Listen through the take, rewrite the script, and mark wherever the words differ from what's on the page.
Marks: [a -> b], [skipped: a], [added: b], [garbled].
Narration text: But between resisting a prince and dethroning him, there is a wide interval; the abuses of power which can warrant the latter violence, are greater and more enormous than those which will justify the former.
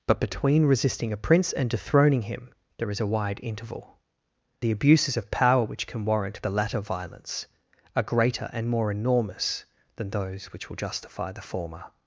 But between resisting a prince and dethroning him, there is a wide interval; the abuses of power which can warrant the latter violence, are greater and more enormous than those which will justify the former.